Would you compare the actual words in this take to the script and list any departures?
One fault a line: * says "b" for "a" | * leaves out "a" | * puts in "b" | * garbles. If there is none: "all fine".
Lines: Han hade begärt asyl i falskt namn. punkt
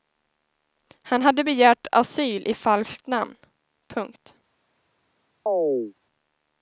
all fine